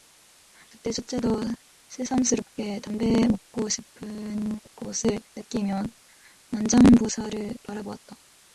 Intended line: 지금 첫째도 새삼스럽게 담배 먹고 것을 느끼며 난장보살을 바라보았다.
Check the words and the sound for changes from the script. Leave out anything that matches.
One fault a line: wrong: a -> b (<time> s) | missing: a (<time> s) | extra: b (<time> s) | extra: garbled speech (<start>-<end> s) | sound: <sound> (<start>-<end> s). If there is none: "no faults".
wrong: 지금 -> 그때 (0.7 s)
extra: 싶은 (3.7 s)